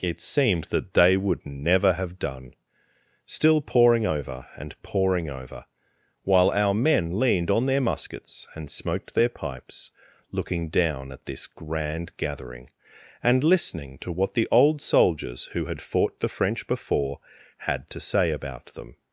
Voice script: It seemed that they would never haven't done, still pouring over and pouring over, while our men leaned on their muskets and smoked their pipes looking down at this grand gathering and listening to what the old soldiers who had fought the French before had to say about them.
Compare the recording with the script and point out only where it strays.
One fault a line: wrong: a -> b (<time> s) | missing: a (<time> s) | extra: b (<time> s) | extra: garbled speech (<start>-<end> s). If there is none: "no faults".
wrong: haven't -> have (1.9 s)